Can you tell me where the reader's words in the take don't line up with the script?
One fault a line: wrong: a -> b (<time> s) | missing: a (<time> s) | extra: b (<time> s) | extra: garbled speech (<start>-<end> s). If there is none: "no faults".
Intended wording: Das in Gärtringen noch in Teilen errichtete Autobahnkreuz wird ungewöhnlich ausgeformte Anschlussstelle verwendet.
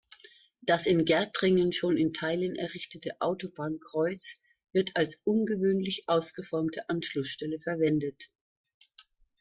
wrong: noch -> schon (1.7 s)
extra: als (4.9 s)